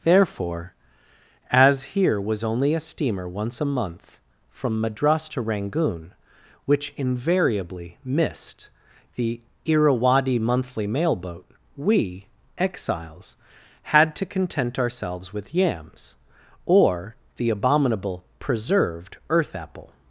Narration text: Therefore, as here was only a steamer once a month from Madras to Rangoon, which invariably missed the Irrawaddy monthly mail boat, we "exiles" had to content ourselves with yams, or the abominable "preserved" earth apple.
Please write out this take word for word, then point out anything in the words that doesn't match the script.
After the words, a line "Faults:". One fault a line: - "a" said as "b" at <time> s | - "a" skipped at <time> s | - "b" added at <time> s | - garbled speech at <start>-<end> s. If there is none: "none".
Therefore, as here was only a steamer once a month from Madras to Rangoon, which invariably missed the Irrawaddy monthly mail boat, we "exiles" had to content ourselves with yams, or the abominable "preserved" earth apple.
Faults:
none